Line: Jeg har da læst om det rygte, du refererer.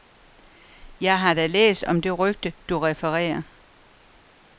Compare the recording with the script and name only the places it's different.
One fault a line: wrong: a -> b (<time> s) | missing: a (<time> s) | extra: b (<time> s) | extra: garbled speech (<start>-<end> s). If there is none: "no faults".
no faults